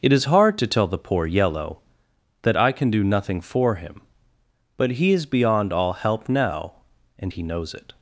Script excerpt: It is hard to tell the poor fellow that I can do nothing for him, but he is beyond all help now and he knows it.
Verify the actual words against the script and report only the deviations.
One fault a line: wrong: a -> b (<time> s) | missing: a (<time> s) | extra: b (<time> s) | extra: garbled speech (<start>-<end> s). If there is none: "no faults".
wrong: fellow -> yellow (1.3 s)